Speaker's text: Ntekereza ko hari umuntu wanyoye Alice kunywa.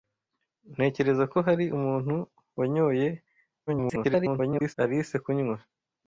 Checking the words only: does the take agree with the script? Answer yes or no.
no